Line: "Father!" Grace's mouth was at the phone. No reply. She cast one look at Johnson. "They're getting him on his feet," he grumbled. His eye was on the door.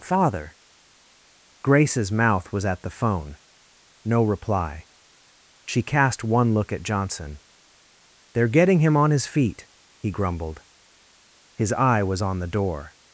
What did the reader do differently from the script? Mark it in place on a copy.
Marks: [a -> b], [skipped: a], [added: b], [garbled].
"Father!" Grace's mouth was at the phone. No reply. She cast one look at Johnson. "They're getting him on his feet," he grumbled. His eye was on the door.